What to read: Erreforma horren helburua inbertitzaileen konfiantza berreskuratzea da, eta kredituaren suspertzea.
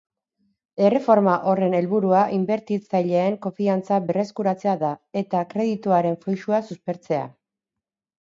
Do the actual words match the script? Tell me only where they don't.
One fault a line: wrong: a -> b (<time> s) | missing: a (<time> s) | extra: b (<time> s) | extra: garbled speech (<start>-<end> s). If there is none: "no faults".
extra: fluxua (6.3 s)